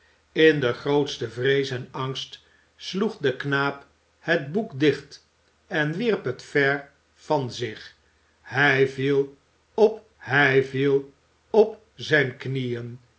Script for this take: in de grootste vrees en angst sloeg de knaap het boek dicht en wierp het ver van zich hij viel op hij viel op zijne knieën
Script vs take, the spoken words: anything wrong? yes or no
no